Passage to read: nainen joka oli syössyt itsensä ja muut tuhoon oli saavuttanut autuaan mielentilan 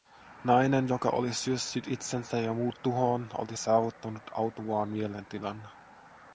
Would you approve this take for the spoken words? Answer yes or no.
yes